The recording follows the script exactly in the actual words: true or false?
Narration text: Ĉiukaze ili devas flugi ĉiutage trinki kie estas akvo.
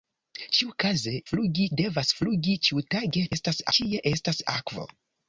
false